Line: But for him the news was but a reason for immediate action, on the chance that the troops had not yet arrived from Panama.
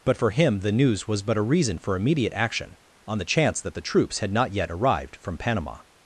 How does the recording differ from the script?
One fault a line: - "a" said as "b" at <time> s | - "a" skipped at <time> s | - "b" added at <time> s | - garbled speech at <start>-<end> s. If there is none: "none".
none